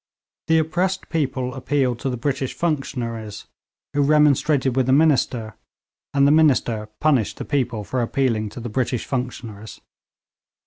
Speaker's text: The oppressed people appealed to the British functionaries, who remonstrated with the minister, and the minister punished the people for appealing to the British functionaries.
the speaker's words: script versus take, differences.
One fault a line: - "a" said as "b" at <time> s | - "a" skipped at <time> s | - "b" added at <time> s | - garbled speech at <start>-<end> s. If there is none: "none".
none